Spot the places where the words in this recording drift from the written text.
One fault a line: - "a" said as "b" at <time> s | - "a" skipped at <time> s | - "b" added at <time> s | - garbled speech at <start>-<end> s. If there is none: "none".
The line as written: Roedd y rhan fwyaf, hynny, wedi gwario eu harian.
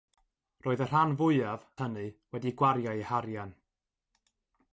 none